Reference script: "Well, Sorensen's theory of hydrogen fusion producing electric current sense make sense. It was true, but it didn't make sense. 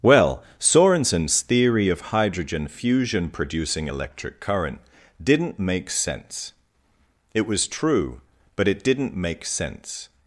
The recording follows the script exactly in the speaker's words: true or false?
false